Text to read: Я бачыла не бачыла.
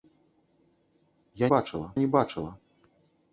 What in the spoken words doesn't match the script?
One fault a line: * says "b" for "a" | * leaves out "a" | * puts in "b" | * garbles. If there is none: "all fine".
all fine